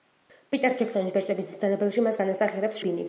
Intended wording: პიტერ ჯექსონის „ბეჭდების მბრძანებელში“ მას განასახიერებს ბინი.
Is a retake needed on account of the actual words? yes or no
no